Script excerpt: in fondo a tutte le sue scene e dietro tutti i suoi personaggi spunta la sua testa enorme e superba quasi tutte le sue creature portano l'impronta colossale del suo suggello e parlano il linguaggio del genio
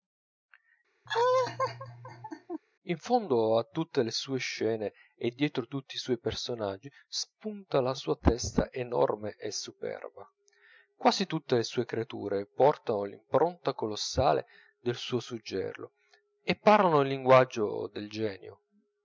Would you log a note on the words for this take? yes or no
no